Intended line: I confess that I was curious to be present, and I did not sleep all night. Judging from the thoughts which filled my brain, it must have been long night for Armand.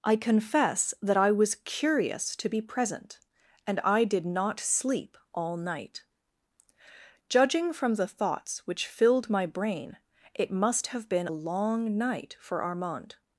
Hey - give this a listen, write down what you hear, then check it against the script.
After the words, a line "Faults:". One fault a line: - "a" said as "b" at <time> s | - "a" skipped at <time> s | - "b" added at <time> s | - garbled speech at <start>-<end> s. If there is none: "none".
I confess that I was curious to be present, and I did not sleep all night. Judging from the thoughts which filled my brain, it must have been long night for Armand.
Faults:
none